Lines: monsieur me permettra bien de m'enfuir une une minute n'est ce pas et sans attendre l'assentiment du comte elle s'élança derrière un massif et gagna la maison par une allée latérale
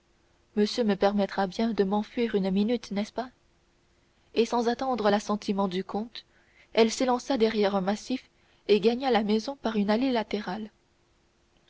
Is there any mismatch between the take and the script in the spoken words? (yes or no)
yes